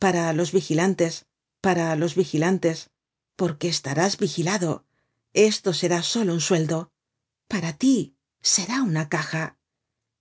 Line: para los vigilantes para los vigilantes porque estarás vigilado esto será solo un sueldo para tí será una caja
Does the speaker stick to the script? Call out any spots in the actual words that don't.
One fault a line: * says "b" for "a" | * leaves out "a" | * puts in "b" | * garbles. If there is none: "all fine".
all fine